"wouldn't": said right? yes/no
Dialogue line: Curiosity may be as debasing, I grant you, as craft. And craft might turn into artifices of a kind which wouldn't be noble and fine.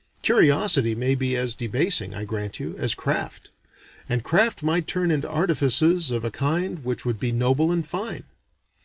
no